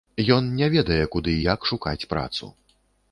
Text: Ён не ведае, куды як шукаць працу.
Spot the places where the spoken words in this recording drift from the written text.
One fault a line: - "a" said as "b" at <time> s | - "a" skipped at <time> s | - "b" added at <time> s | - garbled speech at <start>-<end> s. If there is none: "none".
none